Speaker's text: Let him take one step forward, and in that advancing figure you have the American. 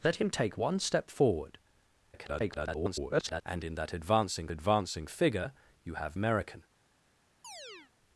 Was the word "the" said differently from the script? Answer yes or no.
yes